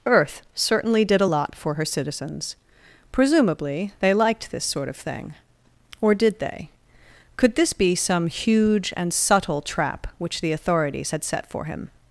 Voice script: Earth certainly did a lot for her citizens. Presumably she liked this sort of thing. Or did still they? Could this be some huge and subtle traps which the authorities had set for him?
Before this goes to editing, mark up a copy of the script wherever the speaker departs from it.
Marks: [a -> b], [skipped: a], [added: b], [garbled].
Earth certainly did a lot for her citizens. Presumably [she -> they] liked this sort of thing. Or did [skipped: still] they? Could this be some huge and subtle [traps -> trap] which the authorities had set for him?